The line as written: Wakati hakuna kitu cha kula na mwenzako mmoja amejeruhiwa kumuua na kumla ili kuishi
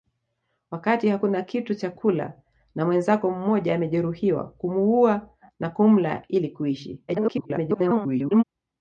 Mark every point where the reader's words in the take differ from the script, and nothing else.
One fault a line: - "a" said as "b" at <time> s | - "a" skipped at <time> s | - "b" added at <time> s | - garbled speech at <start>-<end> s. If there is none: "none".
- garbled speech at 7.1-8.4 s